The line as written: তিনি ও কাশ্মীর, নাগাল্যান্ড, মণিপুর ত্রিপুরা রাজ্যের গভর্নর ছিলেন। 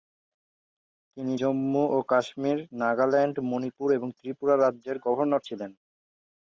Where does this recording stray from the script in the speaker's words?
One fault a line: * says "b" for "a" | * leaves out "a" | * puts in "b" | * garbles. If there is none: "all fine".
* puts in "জম্মু"
* puts in "এবং"